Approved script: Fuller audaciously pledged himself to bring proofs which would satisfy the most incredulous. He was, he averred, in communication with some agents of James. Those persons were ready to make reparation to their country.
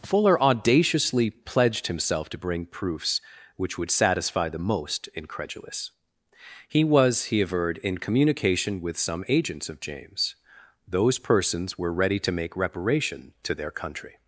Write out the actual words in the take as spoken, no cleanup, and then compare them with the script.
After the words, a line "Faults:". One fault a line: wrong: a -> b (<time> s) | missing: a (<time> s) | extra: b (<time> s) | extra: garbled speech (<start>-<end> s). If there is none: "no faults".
Fuller audaciously pledged himself to bring proofs which would satisfy the most incredulous. He was, he averred, in communication with some agents of James. Those persons were ready to make reparation to their country.
Faults:
no faults